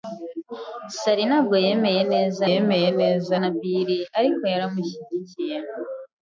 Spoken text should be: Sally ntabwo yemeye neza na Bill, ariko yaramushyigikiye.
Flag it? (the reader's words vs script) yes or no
yes